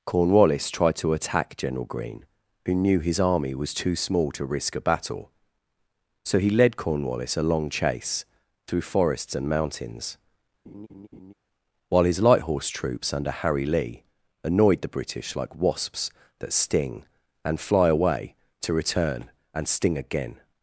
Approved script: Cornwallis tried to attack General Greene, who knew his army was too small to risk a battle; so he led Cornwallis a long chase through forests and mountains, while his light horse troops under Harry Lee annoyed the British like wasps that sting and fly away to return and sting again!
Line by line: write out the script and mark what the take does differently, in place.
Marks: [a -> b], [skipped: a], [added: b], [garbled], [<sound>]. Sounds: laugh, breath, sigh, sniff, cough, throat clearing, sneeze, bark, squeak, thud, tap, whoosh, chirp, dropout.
Cornwallis tried to attack General Greene, who knew his army was too small to risk a battle; so he led Cornwallis a long chase through forests and mountains, [laugh] while his light horse troops under Harry Lee annoyed the British like wasps that sting and fly away to return and sting again!